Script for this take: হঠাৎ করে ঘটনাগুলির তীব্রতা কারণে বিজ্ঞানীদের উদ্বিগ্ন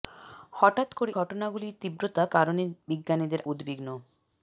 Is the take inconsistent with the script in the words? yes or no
no